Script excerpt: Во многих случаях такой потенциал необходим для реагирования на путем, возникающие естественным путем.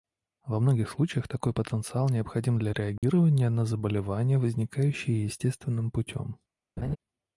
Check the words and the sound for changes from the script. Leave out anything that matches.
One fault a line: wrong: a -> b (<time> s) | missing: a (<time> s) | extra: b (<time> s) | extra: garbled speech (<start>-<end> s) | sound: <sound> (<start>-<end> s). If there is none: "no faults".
sound: dropout (3.0-3.0 s)
wrong: путем -> заболевания (3.6 s)
sound: laugh (6.8-7.0 s)